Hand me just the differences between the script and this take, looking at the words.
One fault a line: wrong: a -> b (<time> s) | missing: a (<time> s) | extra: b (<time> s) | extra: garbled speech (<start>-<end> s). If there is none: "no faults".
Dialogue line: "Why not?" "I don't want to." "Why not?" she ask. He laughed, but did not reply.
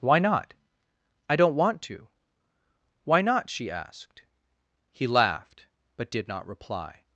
wrong: ask -> asked (3.7 s)